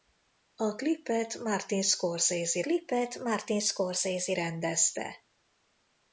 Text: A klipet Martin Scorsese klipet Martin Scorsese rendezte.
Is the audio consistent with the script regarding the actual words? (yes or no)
yes